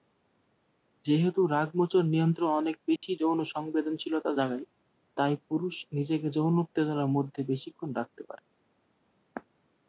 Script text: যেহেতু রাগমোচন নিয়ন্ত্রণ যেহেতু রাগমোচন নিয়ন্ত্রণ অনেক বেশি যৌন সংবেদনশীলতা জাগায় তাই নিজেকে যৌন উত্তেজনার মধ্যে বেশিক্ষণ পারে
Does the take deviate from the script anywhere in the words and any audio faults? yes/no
yes